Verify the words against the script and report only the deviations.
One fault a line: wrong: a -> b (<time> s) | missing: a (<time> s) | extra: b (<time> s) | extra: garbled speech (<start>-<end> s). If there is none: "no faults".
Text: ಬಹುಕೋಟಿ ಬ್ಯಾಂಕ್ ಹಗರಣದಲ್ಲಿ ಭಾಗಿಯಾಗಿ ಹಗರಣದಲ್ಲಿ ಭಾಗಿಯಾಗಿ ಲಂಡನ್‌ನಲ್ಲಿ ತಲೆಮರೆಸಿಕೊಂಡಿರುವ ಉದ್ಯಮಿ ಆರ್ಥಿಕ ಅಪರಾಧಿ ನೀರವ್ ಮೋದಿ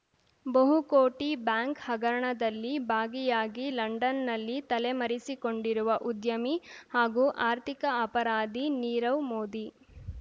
missing: ಹಗರಣದಲ್ಲಿ ಭಾಗಿಯಾಗಿ (3.7 s)
extra: ಹಾಗೂ (6.9 s)